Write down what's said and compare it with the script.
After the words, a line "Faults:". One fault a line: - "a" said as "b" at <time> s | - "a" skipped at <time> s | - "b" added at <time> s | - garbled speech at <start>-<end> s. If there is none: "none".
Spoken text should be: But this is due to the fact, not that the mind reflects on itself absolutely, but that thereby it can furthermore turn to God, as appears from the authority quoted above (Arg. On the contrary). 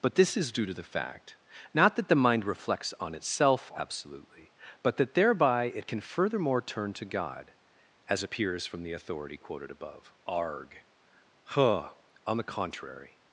But this is due to the fact, not that the mind reflects on itself absolutely, but that thereby it can furthermore turn to God, as appears from the authority quoted above (Arg. huh On the contrary).
Faults:
- "huh" added at 11.4 s